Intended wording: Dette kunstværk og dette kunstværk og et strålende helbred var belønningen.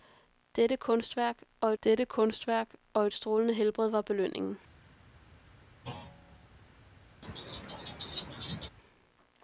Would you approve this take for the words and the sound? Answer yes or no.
no